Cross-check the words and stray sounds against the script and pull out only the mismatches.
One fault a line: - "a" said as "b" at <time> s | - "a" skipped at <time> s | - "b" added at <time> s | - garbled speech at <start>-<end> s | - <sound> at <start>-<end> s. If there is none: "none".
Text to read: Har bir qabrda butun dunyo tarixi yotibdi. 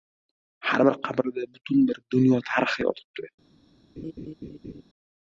- "bir" added at 1.9 s
- laugh at 4.0-4.8 s